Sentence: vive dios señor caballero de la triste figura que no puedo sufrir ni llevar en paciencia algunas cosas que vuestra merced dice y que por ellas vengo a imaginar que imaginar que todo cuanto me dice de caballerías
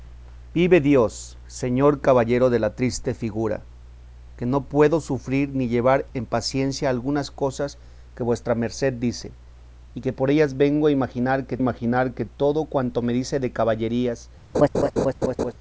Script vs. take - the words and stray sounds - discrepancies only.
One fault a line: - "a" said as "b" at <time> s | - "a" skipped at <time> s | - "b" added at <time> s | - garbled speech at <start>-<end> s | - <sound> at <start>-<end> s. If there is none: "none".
- laugh at 14.5-15.5 s